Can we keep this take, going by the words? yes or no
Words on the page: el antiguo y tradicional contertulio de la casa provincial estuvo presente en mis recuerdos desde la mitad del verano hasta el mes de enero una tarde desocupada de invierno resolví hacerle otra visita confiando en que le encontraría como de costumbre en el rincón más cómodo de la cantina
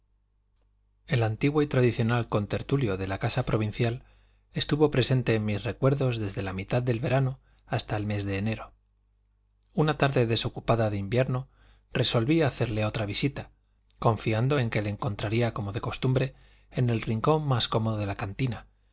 yes